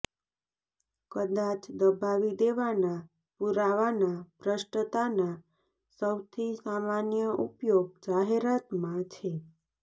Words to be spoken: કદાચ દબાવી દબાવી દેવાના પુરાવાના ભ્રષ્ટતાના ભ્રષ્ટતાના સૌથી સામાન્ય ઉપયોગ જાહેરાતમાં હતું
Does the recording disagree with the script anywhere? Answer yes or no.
yes